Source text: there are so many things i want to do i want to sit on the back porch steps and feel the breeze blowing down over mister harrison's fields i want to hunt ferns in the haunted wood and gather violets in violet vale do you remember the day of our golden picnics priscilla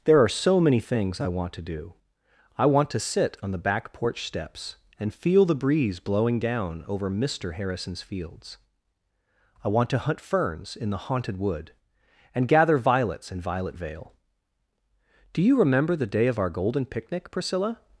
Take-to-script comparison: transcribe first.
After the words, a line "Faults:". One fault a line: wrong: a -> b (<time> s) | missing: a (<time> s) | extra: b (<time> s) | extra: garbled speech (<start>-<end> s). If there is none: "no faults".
there are so many things i want to do i want to sit on the back porch steps and feel the breeze blowing down over mister harrison's fields i want to hunt ferns in the haunted wood and gather violets in violet vale do you remember the day of our golden picnic priscilla
Faults:
wrong: picnics -> picnic (16.9 s)